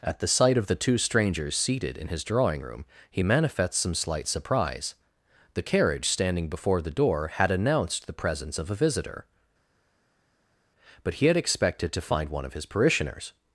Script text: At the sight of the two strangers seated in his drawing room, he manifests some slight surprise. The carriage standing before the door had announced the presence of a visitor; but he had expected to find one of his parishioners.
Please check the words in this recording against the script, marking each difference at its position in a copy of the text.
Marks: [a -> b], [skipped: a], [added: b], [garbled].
At the sight of the two strangers seated in his drawing room, he manifests some slight surprise. The carriage standing before the door had announced the presence of a visitor; but he had expected to find one of his parishioners.